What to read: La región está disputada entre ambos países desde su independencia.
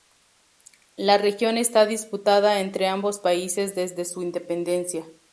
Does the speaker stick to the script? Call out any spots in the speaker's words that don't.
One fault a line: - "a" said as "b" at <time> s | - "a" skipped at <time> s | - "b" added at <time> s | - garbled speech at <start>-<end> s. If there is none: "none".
none